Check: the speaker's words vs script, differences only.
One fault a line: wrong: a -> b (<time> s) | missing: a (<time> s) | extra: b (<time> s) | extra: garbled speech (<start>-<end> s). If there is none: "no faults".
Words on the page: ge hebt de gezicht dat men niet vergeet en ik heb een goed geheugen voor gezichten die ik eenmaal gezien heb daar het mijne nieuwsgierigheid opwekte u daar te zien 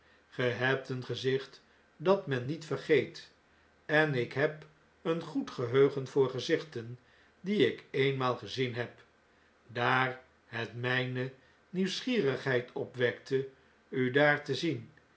wrong: de -> een (0.9 s)